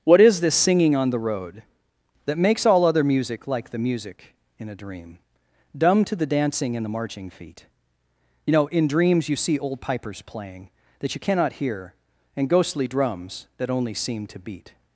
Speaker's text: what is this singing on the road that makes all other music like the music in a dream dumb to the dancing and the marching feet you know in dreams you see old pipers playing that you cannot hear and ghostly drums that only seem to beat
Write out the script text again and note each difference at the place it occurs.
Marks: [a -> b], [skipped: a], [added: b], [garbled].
what is this singing on the road that makes all other music like the music in a dream dumb to the dancing and the marching feet you know in dreams you see old pipers playing that you cannot hear and ghostly drums that only seem to beat